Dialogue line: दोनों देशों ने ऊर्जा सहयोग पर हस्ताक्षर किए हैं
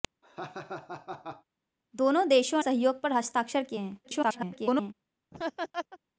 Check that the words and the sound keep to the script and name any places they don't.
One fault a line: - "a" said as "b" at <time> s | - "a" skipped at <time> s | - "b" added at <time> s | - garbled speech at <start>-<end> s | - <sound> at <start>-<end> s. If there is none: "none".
- laugh at 0.2-1.4 s
- "ने ऊर्जा" skipped at 2.6 s
- garbled speech at 4.0-4.9 s
- laugh at 5.3-6.0 s